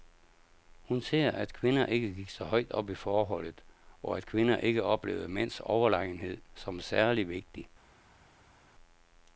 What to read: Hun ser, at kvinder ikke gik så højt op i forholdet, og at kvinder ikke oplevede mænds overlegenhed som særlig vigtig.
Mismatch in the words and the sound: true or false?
false